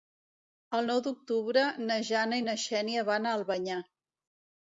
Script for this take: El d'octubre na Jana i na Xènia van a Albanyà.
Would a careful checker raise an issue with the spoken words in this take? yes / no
yes